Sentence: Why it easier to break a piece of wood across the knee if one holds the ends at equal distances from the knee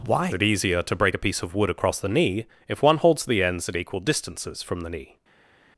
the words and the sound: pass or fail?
pass